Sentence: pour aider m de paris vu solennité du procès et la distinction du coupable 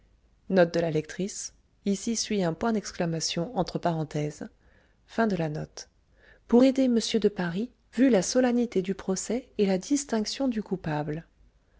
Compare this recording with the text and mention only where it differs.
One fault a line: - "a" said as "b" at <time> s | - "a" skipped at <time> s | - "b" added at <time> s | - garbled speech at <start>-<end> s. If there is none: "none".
- "la" added at 8.1 s